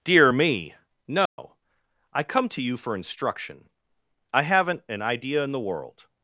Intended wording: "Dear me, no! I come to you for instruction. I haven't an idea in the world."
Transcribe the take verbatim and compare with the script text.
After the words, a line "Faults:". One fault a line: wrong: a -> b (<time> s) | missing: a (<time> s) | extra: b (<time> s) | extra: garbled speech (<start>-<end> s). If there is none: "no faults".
"Dear me, no! I come to you for instruction. I haven't an idea in the world."
Faults:
no faults